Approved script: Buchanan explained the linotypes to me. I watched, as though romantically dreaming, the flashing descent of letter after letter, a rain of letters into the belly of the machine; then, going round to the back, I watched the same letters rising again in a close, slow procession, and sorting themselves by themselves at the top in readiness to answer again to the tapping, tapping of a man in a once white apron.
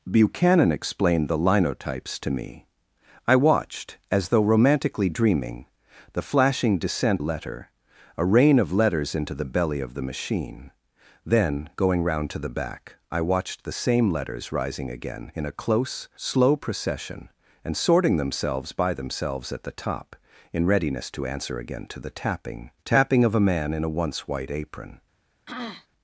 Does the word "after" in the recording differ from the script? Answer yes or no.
yes